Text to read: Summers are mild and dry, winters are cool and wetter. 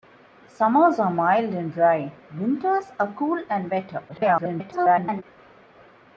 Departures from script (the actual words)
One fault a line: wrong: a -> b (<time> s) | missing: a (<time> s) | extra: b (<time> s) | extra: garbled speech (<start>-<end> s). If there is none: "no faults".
extra: garbled speech (4.1-5.2 s)